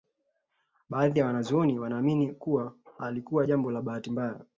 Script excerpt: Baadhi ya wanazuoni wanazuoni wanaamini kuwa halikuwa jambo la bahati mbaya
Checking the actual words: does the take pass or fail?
fail